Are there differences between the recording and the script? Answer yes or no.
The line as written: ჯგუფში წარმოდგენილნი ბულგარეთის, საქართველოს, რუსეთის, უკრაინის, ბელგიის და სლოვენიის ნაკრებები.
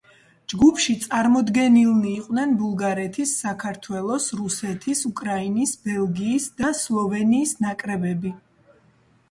yes